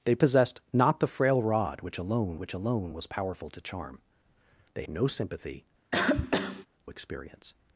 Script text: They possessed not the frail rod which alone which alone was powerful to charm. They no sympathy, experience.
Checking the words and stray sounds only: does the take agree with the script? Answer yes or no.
no